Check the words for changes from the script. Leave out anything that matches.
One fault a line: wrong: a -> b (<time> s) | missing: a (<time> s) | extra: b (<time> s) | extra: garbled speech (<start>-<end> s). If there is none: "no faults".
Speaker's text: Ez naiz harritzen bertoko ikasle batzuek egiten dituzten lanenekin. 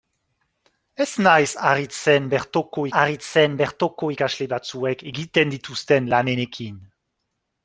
extra: harritzen bertoko (3.0 s)